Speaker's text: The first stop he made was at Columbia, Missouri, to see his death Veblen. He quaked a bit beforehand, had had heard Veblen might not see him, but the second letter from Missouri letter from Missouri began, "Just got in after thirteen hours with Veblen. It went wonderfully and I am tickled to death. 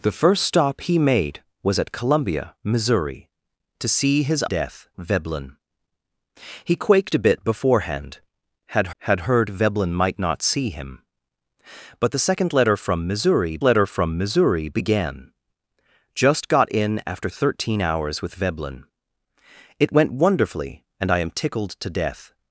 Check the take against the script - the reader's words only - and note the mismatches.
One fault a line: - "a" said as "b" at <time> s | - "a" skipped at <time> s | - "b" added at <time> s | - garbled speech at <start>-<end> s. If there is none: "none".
none